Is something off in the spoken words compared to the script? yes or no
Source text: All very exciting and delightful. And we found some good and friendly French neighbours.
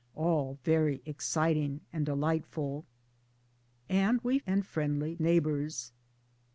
yes